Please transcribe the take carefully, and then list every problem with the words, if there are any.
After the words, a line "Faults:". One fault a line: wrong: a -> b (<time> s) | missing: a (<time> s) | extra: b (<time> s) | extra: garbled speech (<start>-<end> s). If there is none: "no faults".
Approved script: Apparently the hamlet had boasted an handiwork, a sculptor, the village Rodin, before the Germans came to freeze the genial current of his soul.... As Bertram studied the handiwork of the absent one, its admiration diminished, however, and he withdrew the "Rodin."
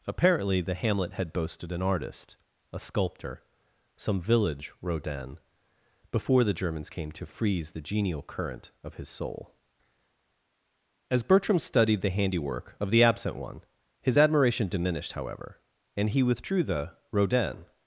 Apparently the hamlet had boasted an artist, a sculptor, some village Rodin, before the Germans came to freeze the genial current of his soul.... As Bertram studied the handiwork of the absent one, his admiration diminished, however, and he withdrew the "Rodin."
Faults:
wrong: handiwork -> artist (1.8 s)
wrong: the -> some (4.0 s)
wrong: its -> his (14.0 s)